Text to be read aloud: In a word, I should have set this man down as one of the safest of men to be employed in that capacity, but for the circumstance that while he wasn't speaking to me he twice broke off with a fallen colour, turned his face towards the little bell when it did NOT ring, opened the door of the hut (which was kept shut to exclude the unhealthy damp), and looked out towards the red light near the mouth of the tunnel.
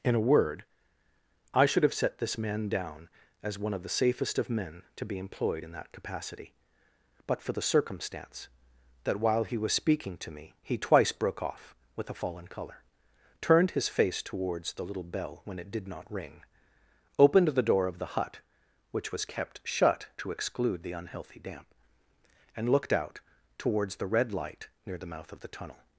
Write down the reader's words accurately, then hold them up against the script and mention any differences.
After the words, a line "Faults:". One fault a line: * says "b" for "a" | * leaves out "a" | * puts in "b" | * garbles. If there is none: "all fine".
In a word, I should have set this man down as one of the safest of men to be employed in that capacity, but for the circumstance that while he was speaking to me he twice broke off with a fallen colour, turned his face towards the little bell when it did NOT ring, opened the door of the hut (which was kept shut to exclude the unhealthy damp), and looked out towards the red light near the mouth of the tunnel.
Faults:
* says "was" for "wasn't"